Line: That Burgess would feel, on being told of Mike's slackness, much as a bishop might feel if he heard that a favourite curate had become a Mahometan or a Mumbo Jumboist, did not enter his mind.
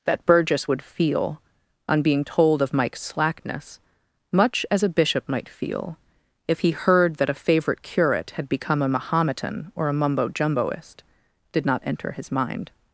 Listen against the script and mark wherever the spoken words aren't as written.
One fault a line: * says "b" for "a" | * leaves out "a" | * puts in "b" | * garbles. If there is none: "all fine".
all fine